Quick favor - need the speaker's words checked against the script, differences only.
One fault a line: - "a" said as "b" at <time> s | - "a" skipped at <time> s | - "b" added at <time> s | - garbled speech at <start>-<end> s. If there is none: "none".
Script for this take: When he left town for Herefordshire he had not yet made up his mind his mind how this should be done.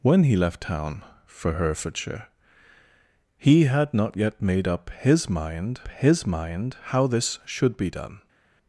none